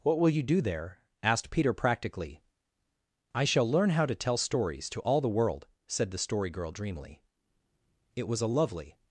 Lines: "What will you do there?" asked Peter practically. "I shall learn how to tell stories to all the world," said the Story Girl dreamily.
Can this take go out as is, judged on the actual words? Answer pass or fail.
fail